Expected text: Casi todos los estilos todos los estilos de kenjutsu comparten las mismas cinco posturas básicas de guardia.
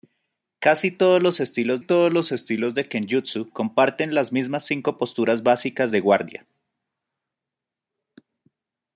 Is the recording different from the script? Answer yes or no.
no